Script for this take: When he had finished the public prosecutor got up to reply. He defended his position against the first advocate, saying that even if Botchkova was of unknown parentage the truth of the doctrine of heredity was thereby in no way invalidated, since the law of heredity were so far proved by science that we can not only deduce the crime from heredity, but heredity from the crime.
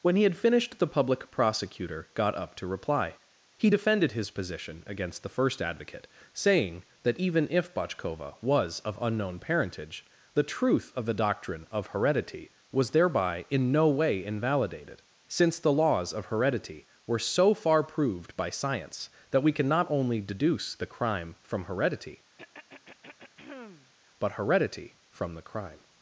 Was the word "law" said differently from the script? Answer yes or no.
yes